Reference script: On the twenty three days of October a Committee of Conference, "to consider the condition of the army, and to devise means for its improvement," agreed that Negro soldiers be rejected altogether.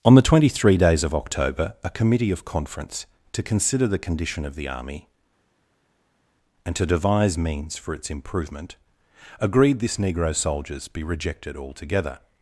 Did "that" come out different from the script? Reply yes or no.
yes